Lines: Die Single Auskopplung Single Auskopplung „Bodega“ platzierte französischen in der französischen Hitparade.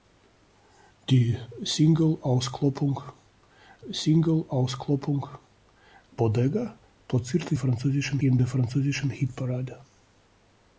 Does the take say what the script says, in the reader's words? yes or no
yes